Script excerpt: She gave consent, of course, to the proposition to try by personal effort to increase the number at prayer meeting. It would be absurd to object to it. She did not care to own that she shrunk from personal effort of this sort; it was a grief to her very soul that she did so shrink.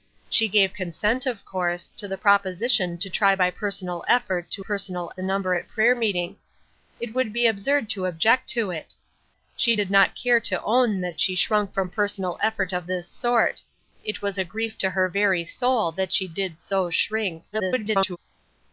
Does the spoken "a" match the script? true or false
true